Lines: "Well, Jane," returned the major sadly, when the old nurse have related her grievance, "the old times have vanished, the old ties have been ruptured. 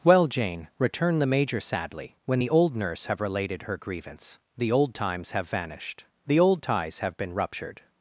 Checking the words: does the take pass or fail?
pass